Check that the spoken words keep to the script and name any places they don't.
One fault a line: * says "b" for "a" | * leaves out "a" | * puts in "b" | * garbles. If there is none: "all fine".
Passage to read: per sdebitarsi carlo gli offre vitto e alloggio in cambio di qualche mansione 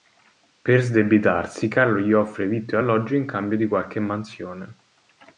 all fine